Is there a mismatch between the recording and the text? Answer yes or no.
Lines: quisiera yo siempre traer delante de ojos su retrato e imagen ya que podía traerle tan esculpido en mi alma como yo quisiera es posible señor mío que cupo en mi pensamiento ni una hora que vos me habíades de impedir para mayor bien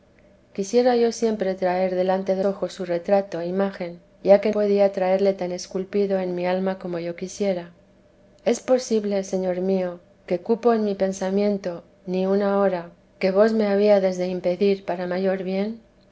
no